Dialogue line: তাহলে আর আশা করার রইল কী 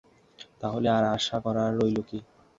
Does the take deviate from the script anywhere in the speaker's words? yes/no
no